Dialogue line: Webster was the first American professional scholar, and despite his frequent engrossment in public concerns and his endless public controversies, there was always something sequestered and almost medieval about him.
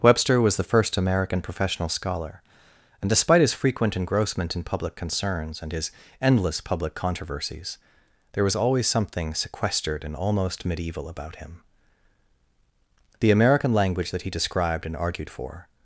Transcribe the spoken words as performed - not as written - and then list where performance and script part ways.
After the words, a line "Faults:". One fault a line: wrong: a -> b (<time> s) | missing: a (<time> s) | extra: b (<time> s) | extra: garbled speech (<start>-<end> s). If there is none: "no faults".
Webster was the first American professional scholar, and despite his frequent engrossment in public concerns and his endless public controversies, there was always something sequestered and almost medieval about him. The American language that he described and argued for
Faults:
extra: The American language that he described and argued for (13.2 s)